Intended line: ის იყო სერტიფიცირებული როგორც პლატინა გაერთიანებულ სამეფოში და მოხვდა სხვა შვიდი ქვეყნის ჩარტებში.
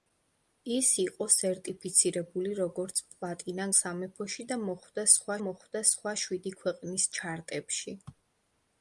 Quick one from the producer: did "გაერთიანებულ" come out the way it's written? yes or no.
no